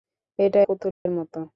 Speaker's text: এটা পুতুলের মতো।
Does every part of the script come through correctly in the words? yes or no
yes